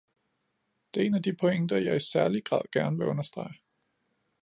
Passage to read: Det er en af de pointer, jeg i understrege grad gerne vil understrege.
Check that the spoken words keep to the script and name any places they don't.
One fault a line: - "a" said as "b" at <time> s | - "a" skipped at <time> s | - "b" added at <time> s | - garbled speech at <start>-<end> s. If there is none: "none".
- "understrege" said as "særlig" at 2.0 s